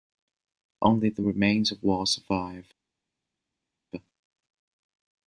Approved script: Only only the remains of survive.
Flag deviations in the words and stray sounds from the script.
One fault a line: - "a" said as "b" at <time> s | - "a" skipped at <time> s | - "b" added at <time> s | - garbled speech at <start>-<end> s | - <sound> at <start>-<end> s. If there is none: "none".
- "only" skipped at 1.1 s
- "walls" added at 1.8 s